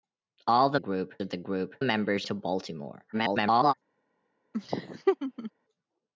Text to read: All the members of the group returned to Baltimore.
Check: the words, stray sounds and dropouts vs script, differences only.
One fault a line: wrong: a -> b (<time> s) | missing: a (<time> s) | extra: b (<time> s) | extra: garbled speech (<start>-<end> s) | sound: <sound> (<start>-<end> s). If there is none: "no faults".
wrong: members -> group (0.8 s)
wrong: returned -> members (1.8 s)
extra: garbled speech (3.1-3.7 s)
sound: laugh (4.5-5.5 s)